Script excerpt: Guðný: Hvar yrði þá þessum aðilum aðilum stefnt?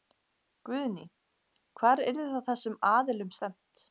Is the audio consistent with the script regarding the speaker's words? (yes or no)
no